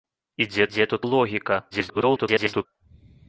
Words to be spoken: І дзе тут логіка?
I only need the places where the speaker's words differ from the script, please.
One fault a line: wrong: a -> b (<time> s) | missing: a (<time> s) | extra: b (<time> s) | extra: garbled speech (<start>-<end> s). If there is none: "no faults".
extra: дзе (0.7 s)
extra: garbled speech (1.7-2.7 s)